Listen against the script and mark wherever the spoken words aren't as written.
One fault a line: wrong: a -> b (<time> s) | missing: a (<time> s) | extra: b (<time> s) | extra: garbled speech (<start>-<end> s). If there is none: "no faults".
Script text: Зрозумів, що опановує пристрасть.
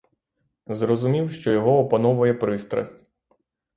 extra: його (1.5 s)